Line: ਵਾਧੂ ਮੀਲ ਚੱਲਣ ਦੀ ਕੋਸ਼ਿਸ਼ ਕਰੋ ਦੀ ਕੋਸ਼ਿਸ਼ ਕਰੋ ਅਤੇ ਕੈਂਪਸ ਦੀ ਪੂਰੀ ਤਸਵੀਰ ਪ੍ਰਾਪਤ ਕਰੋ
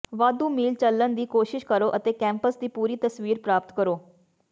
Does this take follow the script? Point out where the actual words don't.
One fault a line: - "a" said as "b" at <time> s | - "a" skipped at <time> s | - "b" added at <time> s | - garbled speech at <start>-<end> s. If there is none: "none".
- "ਦੀ ਕੋਸ਼ਿਸ਼ ਕਰੋ" skipped at 1.9 s